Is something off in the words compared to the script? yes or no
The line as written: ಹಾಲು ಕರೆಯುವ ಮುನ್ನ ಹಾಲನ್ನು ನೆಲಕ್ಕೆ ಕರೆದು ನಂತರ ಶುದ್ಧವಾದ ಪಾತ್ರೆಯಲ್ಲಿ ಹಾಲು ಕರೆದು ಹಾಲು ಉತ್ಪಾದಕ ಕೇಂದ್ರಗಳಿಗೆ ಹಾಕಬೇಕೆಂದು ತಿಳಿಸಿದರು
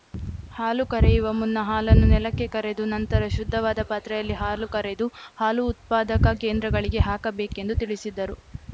no